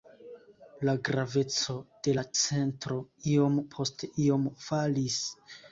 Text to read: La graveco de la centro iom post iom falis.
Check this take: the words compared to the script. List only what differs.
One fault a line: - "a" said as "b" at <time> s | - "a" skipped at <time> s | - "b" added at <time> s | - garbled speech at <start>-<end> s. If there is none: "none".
none